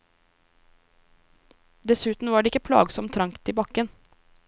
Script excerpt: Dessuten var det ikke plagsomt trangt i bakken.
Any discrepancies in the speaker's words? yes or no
no